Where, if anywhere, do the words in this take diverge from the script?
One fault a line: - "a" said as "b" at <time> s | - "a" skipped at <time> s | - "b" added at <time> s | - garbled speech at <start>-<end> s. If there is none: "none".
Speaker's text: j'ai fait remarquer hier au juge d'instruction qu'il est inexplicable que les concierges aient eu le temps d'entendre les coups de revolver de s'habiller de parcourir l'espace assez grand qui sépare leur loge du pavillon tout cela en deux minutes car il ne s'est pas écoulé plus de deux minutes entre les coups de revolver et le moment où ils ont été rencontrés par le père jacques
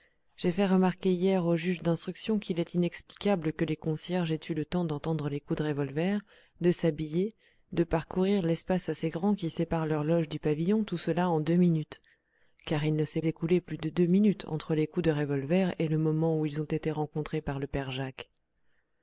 - "pas" skipped at 13.2 s